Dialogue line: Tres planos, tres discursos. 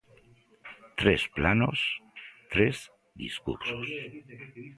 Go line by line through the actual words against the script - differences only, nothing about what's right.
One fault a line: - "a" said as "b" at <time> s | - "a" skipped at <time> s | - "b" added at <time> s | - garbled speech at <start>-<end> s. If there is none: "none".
none